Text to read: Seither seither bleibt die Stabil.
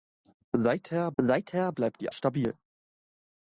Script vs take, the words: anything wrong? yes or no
no